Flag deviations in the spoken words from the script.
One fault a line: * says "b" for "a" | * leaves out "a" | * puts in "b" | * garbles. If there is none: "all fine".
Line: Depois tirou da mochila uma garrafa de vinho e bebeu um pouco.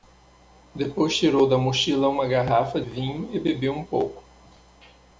* leaves out "de"